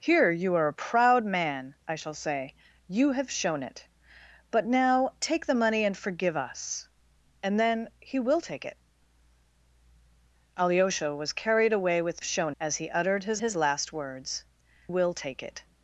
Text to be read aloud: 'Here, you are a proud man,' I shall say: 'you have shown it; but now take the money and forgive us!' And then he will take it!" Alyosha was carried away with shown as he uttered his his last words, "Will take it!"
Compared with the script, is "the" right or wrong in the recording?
right